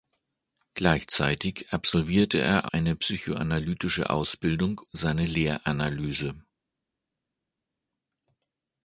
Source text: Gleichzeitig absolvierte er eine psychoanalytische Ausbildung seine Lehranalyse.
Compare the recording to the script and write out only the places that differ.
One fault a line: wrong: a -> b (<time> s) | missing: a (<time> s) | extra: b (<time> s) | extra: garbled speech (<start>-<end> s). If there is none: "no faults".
no faults